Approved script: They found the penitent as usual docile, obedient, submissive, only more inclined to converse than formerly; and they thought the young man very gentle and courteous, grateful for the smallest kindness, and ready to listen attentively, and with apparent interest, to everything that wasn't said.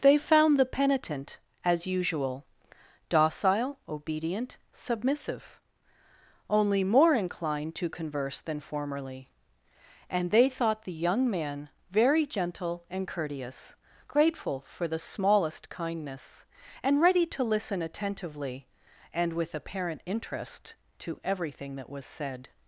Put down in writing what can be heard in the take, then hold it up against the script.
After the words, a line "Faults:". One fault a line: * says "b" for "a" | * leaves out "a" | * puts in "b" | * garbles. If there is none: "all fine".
They found the penitent as usual docile, obedient, submissive, only more inclined to converse than formerly; and they thought the young man very gentle and courteous, grateful for the smallest kindness, and ready to listen attentively, and with apparent interest, to everything that was said.
Faults:
* says "was" for "wasn't"